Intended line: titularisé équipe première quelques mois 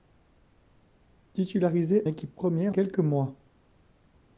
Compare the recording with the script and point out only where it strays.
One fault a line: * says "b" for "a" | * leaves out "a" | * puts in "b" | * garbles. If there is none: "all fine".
all fine